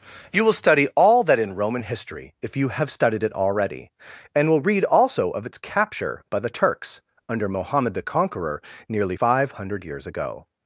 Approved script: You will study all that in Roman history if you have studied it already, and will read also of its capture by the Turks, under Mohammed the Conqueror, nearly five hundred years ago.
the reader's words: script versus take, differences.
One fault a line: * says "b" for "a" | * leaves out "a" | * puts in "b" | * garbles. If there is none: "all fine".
all fine